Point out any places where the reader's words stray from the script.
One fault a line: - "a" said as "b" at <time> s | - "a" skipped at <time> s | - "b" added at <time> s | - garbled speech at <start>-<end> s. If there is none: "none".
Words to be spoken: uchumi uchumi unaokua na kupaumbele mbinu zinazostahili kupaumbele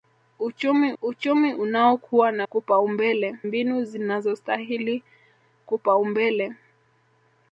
none